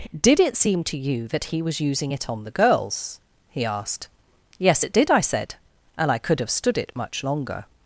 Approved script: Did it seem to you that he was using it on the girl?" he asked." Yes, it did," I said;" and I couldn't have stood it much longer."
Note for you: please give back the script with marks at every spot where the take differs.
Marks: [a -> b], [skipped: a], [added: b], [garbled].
Did it seem to you that he was using it on the [girl?" -> girls] he asked." Yes, it did," I said;" and I [couldn't -> could] have stood it much longer."